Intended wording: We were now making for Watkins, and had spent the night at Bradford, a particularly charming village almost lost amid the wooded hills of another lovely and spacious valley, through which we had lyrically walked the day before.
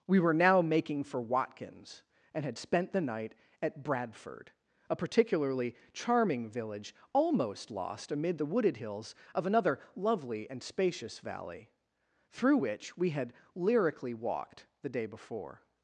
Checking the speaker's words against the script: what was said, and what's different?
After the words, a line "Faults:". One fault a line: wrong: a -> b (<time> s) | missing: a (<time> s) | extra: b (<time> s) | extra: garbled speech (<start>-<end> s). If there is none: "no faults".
We were now making for Watkins, and had spent the night at Bradford, a particularly charming village almost lost amid the wooded hills of another lovely and spacious valley, through which we had lyrically walked the day before.
Faults:
no faults